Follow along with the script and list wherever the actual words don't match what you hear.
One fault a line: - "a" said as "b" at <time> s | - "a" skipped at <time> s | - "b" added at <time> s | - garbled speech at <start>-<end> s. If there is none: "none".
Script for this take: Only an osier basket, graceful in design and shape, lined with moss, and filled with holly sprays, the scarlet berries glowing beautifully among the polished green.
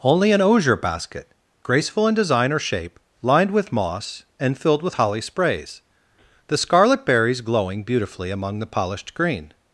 - "and" said as "or" at 2.5 s